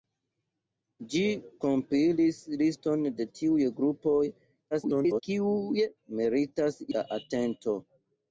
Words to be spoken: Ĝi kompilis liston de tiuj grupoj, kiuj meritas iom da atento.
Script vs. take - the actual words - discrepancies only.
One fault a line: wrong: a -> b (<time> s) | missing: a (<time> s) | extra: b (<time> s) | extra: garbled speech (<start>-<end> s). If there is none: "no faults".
extra: garbled speech (4.7-5.2 s)
missing: iom (6.8 s)